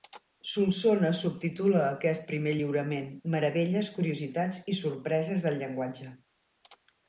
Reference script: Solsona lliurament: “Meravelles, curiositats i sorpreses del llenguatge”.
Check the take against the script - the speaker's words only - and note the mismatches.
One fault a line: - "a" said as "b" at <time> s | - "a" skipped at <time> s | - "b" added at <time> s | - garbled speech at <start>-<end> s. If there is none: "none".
- "subtitula aquest primer" added at 1.2 s